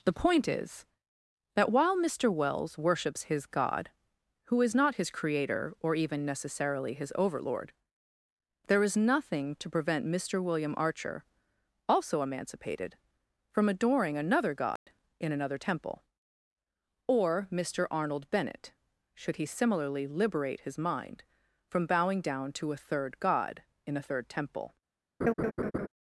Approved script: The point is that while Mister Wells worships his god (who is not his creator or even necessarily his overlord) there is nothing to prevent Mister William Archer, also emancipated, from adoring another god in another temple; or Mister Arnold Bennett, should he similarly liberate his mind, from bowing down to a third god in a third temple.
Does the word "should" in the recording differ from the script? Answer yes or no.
no